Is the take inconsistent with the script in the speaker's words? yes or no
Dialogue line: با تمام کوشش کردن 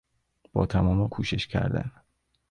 no